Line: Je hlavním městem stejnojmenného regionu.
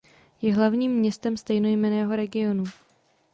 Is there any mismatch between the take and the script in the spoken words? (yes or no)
no